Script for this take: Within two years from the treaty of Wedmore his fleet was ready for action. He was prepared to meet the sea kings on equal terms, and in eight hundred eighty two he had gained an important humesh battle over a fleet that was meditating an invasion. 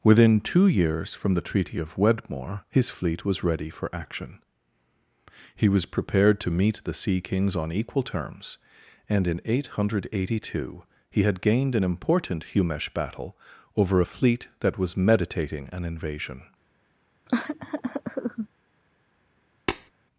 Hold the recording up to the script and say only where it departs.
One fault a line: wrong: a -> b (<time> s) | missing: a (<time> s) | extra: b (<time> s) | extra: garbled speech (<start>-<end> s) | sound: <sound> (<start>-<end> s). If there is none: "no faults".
sound: cough (17.3-18.5 s)
sound: tap (19.7-19.9 s)